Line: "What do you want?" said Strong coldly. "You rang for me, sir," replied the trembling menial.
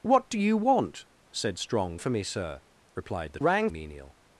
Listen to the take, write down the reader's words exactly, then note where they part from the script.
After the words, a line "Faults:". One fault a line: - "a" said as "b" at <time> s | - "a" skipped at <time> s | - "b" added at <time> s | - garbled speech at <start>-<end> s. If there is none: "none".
"What do you want?" said Strong for me, sir," replied the rang menial.
Faults:
- "coldly You rang" skipped at 2.0 s
- "trembling" said as "rang" at 3.4 s